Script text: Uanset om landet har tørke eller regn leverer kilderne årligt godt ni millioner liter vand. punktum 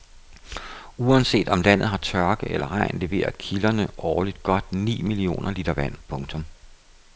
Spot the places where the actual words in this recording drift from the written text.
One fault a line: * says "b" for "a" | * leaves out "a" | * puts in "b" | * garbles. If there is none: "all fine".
all fine